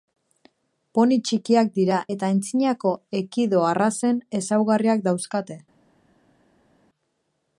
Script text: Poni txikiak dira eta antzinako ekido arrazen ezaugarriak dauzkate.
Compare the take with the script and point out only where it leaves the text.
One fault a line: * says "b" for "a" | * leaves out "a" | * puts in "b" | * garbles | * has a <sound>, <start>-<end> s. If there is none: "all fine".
all fine